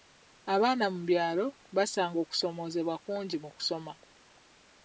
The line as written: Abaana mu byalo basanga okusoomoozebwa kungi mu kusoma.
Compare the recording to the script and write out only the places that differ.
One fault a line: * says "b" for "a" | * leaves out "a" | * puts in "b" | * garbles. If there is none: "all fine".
all fine